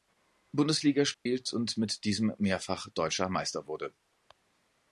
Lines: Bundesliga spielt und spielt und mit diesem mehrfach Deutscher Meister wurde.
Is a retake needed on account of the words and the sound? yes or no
yes